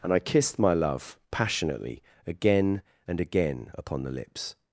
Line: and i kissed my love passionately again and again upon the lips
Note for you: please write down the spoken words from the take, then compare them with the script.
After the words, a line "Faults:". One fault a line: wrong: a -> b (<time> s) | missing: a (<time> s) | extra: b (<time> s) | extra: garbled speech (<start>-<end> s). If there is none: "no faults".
and i kissed my love passionately again and again upon the lips
Faults:
no faults